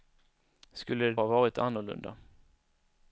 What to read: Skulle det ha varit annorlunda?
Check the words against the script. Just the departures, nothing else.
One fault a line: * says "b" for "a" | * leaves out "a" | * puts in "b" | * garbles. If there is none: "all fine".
all fine